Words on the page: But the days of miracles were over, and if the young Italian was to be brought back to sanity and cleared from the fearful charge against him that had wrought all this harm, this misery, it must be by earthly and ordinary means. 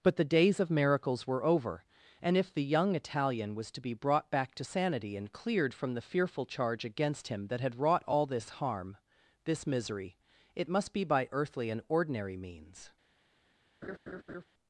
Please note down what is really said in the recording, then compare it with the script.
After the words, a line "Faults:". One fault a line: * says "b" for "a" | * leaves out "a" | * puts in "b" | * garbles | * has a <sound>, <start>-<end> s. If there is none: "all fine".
But the days of miracles were over, and if the young Italian was to be brought back to sanity and cleared from the fearful charge against him that had wrought all this harm, this misery, it must be by earthly and ordinary means.
Faults:
* has a laugh, 13.8-14.4 s